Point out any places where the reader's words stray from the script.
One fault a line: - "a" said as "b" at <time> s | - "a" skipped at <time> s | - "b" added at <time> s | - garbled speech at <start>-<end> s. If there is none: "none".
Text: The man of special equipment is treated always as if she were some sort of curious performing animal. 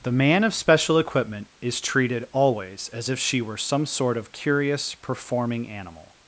none